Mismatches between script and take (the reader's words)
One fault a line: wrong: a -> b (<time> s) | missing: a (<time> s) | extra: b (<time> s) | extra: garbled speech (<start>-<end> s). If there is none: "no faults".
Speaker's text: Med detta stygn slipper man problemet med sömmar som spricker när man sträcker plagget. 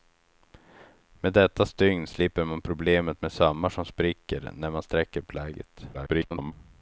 extra: garbled speech (5.9-6.5 s)